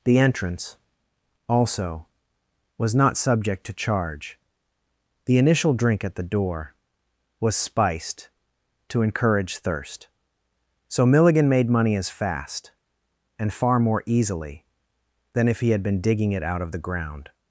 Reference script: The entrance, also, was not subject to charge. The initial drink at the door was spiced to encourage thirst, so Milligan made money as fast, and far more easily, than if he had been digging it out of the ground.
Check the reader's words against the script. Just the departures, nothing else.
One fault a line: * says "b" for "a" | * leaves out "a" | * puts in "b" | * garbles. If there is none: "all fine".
all fine